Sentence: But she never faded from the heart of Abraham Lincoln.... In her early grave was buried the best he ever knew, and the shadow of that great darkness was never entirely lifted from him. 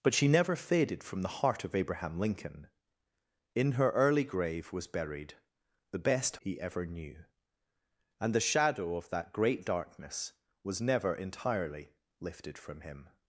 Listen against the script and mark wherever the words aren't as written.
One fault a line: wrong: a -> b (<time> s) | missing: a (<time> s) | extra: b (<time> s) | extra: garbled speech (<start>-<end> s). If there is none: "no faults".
no faults